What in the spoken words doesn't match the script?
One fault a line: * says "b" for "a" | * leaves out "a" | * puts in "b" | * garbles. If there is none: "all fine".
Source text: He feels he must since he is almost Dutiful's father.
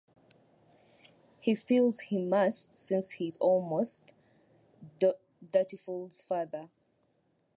all fine